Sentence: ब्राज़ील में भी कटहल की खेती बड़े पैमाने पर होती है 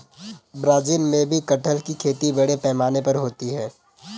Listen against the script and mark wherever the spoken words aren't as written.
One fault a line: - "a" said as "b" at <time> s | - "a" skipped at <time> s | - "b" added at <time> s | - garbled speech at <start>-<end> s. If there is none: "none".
none